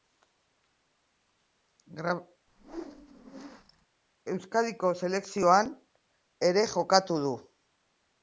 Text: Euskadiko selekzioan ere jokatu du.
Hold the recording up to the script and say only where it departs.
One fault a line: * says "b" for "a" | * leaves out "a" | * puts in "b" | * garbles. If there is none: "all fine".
all fine